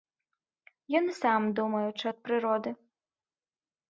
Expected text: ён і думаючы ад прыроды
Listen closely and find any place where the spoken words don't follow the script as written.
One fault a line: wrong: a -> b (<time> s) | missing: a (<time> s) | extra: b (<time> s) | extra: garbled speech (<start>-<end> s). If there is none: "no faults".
extra: сам (1.2 s)